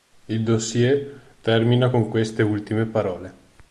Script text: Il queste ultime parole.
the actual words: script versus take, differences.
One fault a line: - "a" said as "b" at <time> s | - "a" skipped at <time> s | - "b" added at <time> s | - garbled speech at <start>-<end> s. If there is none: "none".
- "dossier termina con" added at 0.4 s